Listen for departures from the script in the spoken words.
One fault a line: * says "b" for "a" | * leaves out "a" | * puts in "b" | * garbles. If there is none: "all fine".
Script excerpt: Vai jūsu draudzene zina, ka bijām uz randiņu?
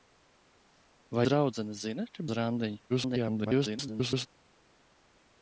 * leaves out "jūsu"
* leaves out "bijām"
* garbles